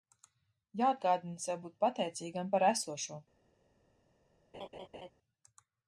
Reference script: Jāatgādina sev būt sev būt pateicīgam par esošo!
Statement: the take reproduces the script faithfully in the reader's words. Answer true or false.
false